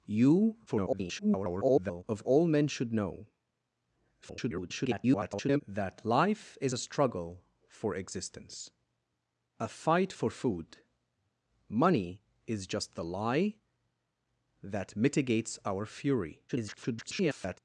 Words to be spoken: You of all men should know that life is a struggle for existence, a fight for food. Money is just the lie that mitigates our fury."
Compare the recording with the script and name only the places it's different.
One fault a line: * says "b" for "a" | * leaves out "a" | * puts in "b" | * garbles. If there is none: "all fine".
* garbles
* garbles
* garbles